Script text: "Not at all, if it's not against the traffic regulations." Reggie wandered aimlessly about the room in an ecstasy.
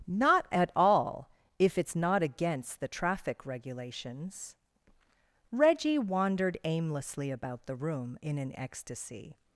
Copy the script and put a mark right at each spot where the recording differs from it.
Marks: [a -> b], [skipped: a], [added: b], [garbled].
"Not at all, if it's not against the traffic regulations." Reggie wandered aimlessly about the room in an ecstasy.